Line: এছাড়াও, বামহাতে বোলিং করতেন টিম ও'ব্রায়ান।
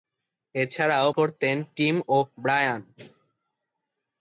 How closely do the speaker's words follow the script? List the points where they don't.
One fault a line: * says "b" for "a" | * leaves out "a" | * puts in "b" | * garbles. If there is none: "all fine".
* leaves out "বামহাতে বোলিং"